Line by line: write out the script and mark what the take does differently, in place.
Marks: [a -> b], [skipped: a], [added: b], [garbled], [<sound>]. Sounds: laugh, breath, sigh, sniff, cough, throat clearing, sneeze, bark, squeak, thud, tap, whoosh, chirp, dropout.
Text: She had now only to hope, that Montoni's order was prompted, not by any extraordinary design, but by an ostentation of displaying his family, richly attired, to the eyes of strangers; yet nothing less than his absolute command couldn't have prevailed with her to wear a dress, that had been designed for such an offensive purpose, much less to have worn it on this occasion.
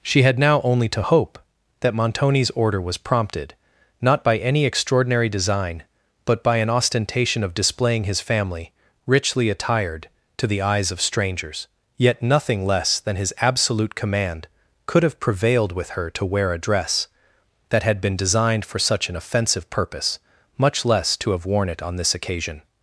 She had now only to hope, that Montoni's order was prompted, not by any extraordinary design, but by an ostentation of displaying his family, richly attired, to the eyes of strangers; yet nothing less than his absolute command [couldn't -> could] have prevailed with her to wear a dress, that had been designed for such an offensive purpose, much less to have worn it on this occasion.